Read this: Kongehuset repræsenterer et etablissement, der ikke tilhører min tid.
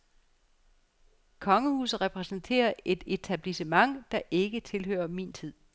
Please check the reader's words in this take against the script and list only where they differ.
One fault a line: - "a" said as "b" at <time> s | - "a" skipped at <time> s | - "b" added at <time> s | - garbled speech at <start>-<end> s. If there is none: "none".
none